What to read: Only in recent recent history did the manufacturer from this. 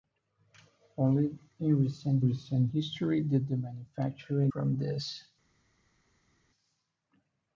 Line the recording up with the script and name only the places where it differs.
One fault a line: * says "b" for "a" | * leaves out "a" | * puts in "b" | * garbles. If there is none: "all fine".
all fine